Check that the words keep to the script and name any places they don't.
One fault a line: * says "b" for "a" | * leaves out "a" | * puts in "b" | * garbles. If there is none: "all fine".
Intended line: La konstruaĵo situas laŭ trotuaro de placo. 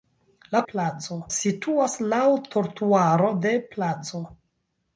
* says "placo" for "konstruaĵo"